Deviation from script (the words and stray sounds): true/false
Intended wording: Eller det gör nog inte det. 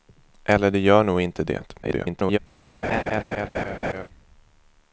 true